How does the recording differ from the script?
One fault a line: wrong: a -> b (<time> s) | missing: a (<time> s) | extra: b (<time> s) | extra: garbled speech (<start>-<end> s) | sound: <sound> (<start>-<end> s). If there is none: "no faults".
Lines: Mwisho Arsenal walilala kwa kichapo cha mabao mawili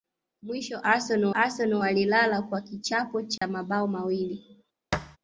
extra: Arsenal (1.3 s)
sound: dropout (3.4-3.4 s)
sound: thud (4.9-5.2 s)